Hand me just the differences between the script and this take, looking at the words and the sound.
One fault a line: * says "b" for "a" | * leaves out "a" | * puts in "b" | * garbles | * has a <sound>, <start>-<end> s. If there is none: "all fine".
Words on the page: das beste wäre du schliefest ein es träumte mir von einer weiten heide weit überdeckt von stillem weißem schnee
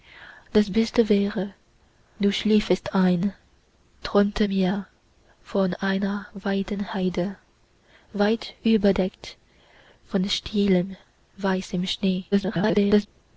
* leaves out "es"
* garbles